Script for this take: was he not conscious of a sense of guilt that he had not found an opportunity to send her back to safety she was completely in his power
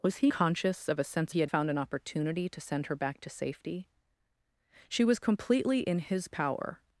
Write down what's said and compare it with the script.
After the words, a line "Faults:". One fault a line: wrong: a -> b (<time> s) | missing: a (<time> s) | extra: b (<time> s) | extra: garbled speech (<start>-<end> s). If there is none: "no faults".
was he conscious of a sense he had found an opportunity to send her back to safety she was completely in his power
Faults:
missing: not (0.3 s)
missing: of guilt that (1.3 s)
missing: not (1.5 s)